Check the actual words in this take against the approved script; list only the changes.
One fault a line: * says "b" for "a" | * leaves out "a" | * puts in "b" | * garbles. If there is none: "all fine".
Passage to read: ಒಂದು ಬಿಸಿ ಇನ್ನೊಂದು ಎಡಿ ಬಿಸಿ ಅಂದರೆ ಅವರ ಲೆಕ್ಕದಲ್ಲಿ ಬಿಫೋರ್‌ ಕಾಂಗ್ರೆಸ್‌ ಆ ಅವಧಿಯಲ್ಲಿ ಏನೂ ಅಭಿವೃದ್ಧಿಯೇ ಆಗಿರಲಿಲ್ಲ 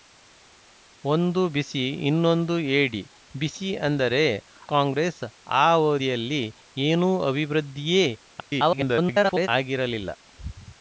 * leaves out "ಅವರ ಲೆಕ್ಕದಲ್ಲಿ ಬಿಫೋರ್"
* garbles